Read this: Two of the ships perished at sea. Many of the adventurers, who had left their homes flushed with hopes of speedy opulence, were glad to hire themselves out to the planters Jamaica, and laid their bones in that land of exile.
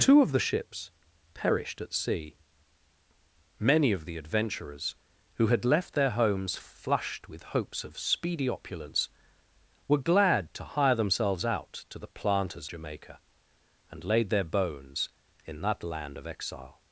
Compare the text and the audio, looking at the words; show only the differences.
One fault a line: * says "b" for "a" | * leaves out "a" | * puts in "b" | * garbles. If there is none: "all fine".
all fine